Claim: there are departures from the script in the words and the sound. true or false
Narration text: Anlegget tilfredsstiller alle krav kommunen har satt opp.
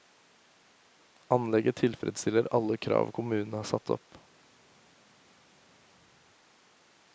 false